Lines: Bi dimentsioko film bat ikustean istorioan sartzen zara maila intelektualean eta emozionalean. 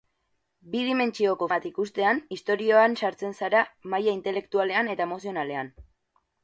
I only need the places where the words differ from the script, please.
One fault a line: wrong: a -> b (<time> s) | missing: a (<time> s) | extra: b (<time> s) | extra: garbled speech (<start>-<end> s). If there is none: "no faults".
missing: film (1.5 s)